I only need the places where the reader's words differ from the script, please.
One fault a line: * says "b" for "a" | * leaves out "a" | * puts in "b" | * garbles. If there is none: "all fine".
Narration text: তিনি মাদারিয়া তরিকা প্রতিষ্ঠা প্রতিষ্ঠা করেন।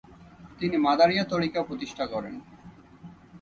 * leaves out "প্রতিষ্ঠা"